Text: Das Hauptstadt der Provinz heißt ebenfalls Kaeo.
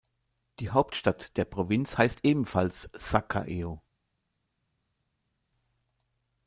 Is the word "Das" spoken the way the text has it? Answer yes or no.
no